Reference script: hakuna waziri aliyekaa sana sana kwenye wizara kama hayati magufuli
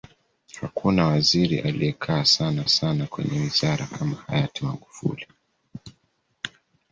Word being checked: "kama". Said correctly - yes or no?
yes